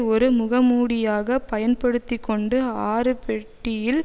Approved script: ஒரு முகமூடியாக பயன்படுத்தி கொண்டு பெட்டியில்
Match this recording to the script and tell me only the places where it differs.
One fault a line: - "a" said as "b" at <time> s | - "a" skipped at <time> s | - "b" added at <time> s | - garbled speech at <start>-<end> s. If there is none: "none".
- "ஆறு" added at 2.9 s